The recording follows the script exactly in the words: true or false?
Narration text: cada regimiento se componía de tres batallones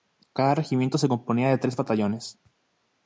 true